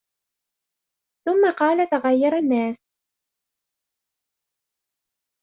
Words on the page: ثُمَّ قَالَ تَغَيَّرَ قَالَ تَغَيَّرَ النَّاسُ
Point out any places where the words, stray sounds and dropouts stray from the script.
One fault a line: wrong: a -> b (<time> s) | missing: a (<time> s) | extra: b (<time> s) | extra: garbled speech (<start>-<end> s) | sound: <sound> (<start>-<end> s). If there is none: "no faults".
missing: قَالَ تَغَيَّرَ (2.4 s)